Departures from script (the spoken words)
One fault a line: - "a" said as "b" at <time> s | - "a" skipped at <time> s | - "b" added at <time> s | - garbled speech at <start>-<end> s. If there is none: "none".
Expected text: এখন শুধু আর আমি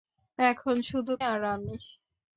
none